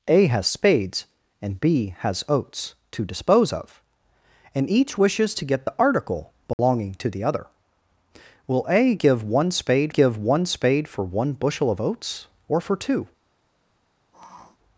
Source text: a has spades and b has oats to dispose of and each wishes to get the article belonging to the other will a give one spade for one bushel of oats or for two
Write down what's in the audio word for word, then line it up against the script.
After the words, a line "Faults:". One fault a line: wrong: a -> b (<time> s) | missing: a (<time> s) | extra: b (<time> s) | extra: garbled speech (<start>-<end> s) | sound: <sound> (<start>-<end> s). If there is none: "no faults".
a has spades and b has oats to dispose of and each wishes to get the article belonging to the other will a give one spade give one spade for one bushel of oats or for two
Faults:
sound: dropout (6.5-6.6 s)
extra: give one spade (9.9 s)
sound: sniff (14.1-14.6 s)